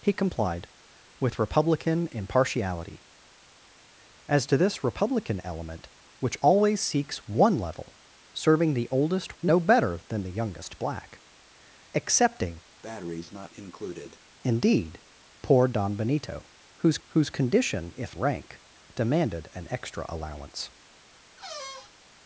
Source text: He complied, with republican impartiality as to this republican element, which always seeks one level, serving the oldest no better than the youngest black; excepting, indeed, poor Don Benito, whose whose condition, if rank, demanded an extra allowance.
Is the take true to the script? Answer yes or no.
yes